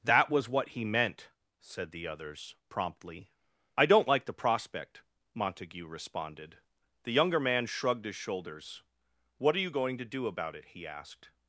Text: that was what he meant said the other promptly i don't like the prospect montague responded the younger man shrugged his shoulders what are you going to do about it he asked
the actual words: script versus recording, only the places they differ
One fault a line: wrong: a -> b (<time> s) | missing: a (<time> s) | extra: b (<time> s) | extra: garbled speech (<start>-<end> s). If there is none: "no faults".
wrong: other -> others (2.1 s)